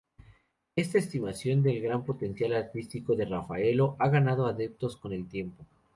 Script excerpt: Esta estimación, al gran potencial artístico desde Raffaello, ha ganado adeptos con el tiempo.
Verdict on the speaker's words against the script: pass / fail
fail